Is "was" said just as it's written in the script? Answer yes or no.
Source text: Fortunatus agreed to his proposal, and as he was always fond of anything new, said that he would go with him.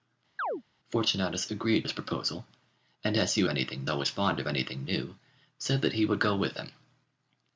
no